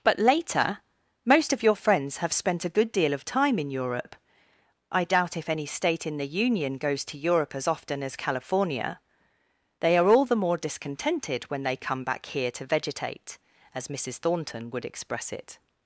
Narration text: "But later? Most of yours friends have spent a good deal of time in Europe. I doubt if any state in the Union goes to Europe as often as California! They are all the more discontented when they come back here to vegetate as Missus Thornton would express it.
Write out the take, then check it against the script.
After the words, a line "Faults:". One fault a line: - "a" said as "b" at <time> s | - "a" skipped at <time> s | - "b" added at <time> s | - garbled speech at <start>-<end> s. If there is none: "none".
"But later? Most of your friends have spent a good deal of time in Europe. I doubt if any state in the Union goes to Europe as often as California! They are all the more discontented when they come back here to vegetate as Missus Thornton would express it.
Faults:
- "yours" said as "your" at 1.6 s